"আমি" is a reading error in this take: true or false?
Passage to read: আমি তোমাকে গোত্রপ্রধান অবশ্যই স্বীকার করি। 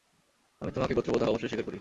false